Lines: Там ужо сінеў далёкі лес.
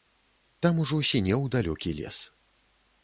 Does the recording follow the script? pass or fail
pass